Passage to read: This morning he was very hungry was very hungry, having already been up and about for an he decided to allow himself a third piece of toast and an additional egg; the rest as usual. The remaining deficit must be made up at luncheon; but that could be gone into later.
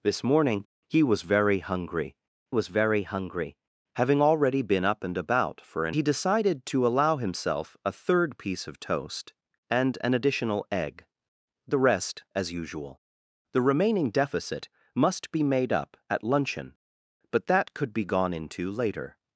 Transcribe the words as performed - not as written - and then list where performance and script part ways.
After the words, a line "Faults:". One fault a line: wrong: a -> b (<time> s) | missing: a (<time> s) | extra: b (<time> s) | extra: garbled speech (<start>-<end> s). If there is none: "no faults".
This morning he was very hungry was very hungry, having already been up and about for an he decided to allow himself a third piece of toast and an additional egg; the rest as usual. The remaining deficit must be made up at luncheon; but that could be gone into later.
Faults:
no faults